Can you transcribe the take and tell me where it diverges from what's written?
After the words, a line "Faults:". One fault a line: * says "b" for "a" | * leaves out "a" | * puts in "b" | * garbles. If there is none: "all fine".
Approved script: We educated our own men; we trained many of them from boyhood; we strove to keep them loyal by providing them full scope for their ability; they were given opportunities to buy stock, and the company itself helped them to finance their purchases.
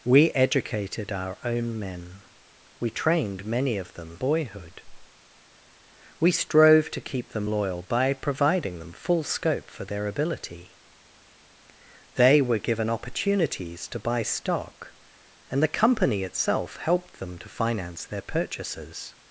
We educated our own men; we trained many of them boyhood; we strove to keep them loyal by providing them full scope for their ability; they were given opportunities to buy stock, and the company itself helped them to finance their purchases.
Faults:
* leaves out "from"